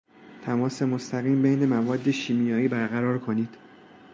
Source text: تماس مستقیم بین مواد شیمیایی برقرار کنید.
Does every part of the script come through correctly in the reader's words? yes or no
yes